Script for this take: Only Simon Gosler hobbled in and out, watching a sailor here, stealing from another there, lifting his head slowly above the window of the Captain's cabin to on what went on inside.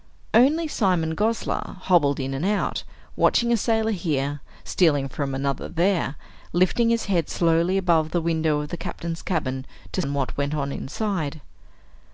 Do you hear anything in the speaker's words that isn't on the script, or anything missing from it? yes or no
no